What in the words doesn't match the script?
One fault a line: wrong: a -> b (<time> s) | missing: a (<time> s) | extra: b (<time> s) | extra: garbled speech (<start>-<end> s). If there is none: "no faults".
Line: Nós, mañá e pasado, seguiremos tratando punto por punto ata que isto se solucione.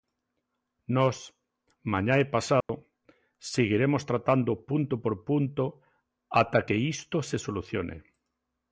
no faults